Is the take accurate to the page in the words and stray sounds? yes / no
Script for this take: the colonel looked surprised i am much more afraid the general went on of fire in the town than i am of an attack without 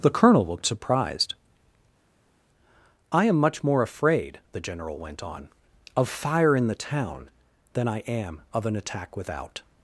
yes